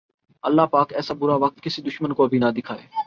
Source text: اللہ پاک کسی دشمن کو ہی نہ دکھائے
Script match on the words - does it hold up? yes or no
no